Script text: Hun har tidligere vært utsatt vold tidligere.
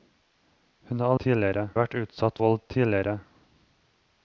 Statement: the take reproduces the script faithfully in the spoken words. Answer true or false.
true